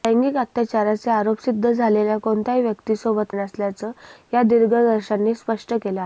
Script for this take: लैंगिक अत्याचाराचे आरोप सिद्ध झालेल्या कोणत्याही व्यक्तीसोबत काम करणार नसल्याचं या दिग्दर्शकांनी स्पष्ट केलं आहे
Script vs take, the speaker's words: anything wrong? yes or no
yes